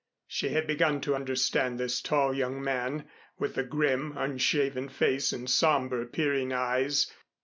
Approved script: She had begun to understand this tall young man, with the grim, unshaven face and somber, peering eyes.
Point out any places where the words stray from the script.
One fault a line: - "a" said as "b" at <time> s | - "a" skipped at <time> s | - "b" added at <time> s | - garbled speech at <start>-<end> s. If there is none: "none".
none